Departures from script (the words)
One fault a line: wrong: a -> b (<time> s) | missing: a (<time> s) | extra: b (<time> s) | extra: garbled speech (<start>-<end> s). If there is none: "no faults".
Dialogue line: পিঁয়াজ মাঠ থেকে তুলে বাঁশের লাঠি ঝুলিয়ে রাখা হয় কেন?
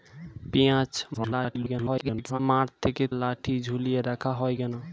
extra: garbled speech (1.1-2.4 s)
missing: তুলে বাঁশের (3.0 s)